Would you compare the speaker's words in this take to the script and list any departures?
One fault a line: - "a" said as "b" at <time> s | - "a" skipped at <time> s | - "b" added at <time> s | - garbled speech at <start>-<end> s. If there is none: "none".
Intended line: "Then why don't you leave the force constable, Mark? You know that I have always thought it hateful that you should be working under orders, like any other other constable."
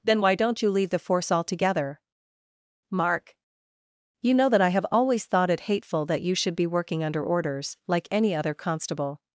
- "constable" said as "altogether" at 1.3 s
- "other" skipped at 8.5 s